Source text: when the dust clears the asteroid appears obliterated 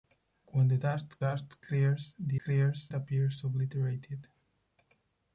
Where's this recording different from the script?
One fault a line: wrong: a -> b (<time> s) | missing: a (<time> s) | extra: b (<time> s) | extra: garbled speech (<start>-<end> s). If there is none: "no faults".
extra: dust (1.2 s)
wrong: asteroid -> clears (2.4 s)